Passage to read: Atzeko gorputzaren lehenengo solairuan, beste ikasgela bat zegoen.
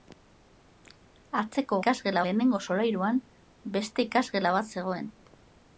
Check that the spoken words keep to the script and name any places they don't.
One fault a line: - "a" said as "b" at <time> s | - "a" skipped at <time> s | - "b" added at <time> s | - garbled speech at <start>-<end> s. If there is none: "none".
- "gorputzaren" said as "ikasgela" at 1.8 s